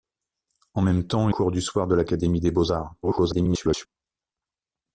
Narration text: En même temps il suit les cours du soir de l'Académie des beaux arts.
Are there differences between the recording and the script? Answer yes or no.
yes